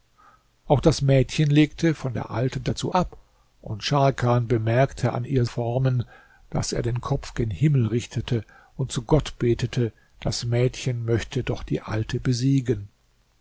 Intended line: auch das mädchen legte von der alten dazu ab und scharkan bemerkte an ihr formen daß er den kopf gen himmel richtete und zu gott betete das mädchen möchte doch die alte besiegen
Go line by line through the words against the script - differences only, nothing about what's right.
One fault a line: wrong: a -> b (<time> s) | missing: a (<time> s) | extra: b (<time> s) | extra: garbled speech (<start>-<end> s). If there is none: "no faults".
no faults